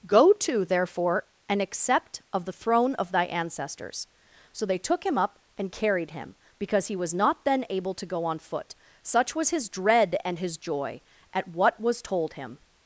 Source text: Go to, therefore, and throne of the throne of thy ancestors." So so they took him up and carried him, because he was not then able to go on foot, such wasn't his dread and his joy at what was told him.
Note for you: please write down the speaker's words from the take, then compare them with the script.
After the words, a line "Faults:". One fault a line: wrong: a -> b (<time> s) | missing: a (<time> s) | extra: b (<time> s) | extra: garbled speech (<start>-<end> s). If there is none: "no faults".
Go to, therefore, and accept of the throne of thy ancestors." So they took him up and carried him, because he was not then able to go on foot, such was his dread and his joy at what was told him.
Faults:
wrong: throne -> accept (1.6 s)
missing: so (4.7 s)
wrong: wasn't -> was (9.3 s)